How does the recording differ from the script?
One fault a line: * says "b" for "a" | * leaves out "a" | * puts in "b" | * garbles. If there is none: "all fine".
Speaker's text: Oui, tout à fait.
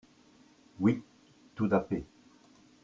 all fine